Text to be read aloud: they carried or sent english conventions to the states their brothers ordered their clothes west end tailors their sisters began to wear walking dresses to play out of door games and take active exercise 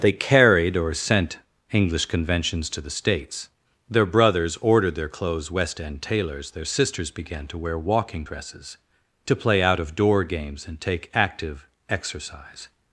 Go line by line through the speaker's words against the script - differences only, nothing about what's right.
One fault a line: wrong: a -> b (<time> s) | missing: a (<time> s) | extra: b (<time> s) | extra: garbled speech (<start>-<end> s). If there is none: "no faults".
no faults